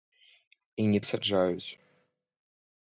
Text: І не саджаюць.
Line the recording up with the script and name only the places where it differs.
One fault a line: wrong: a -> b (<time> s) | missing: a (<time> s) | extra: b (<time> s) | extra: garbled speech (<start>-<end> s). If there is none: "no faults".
no faults